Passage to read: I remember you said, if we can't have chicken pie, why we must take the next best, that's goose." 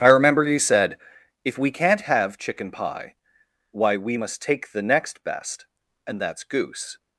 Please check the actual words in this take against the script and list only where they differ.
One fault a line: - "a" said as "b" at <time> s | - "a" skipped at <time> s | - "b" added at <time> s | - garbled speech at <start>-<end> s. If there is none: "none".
- "and" added at 6.1 s